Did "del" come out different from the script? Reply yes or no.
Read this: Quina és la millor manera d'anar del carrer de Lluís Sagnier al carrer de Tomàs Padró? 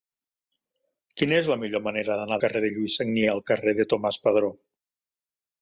yes